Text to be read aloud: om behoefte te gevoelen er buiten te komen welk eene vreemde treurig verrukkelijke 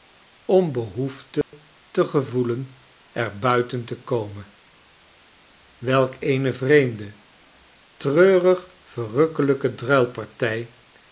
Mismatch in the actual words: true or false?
false